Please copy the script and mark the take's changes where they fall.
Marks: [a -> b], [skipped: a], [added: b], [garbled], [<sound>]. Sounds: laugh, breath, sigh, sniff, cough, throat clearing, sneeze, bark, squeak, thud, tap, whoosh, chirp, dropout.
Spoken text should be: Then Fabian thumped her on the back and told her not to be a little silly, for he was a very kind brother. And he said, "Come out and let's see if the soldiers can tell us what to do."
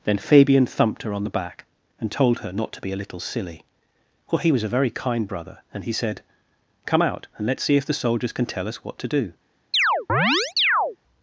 Then Fabian thumped her on the back and told her not to be a little silly, [for -> well] he was a very kind brother. And he said, "Come out and let's see if the soldiers can tell us what to do." [chirp]